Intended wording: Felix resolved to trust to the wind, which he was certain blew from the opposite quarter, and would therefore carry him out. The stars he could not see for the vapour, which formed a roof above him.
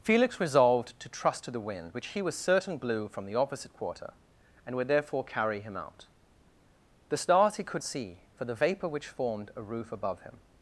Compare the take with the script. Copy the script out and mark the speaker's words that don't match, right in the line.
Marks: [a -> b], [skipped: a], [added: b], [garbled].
Felix resolved to trust to the wind, which he was certain blew from the opposite quarter, and would therefore carry him out. The stars he could [skipped: not] see for the vapour, which formed a roof above him.